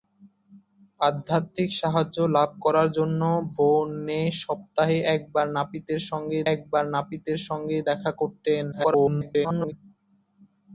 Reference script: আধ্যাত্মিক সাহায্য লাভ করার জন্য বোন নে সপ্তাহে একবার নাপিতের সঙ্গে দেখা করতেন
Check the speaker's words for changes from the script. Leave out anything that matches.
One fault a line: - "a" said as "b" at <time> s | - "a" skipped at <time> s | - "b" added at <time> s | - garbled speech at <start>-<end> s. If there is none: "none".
- "একবার নাপিতের সঙ্গে" added at 6.5 s
- garbled speech at 8.7-9.7 s